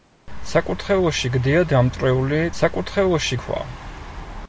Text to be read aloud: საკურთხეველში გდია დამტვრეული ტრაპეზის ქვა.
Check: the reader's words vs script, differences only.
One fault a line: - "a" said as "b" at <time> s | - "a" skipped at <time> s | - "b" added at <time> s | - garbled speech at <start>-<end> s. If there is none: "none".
- "ტრაპეზის" said as "საკურთხეველში" at 2.6 s